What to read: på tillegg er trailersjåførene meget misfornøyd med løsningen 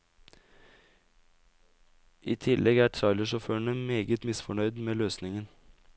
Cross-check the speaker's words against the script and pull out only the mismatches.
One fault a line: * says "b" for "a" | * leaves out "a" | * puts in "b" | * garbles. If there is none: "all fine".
* says "i" for "på"